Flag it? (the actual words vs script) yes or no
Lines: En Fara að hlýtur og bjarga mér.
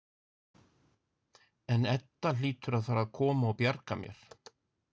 yes